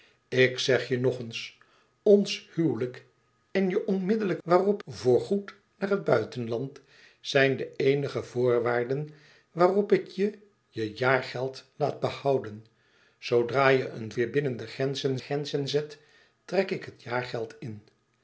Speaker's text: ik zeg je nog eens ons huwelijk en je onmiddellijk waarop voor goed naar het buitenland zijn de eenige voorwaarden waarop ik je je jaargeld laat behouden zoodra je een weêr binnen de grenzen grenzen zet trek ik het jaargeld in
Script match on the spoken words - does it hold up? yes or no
yes